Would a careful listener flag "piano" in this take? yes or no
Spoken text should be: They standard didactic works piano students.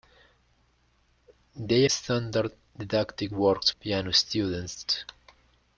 no